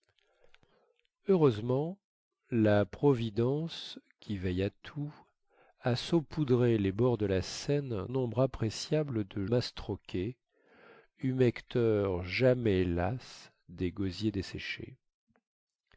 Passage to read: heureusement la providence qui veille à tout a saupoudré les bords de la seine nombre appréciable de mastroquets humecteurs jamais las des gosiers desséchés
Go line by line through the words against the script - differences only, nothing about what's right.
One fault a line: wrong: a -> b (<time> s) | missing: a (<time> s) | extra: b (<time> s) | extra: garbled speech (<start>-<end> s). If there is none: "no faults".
no faults